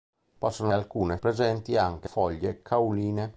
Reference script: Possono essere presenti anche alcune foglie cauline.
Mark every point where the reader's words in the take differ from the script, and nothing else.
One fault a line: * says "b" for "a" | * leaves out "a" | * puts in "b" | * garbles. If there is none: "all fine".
* says "alcune" for "essere"
* leaves out "alcune"